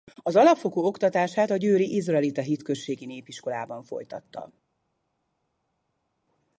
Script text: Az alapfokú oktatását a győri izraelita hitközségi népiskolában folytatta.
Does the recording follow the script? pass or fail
pass